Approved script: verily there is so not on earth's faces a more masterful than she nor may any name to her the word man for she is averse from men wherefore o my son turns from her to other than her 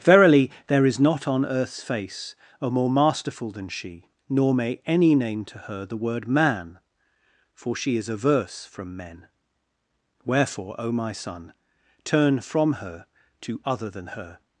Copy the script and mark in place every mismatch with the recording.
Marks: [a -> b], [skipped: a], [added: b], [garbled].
verily there is [skipped: so] not on earth's [faces -> face] a more masterful than she nor may any name to her the word man for she is averse from men wherefore o my son [turns -> turn] from her to other than her